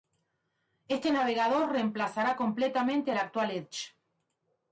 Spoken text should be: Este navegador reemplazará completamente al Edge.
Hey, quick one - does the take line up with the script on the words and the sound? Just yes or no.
no